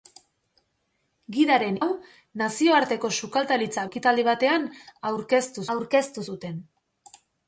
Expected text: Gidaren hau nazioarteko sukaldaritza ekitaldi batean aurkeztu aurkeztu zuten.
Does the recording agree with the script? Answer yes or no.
yes